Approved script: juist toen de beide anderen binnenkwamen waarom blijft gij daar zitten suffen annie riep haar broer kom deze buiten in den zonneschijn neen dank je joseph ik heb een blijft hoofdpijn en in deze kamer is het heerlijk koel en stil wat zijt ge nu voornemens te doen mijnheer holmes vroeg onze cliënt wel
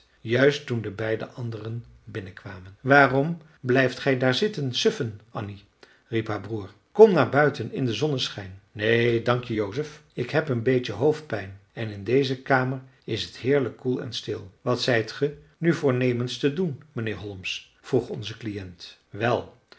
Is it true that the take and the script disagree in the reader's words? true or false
true